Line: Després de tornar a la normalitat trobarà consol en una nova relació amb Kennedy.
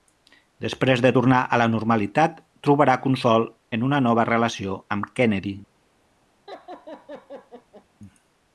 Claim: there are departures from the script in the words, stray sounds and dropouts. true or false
true